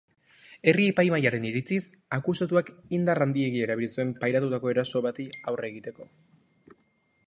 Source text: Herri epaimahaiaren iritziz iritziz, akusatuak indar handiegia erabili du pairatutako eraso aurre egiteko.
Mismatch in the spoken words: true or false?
true